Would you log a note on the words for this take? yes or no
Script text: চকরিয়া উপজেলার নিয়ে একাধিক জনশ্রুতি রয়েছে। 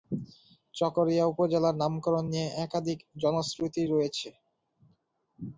yes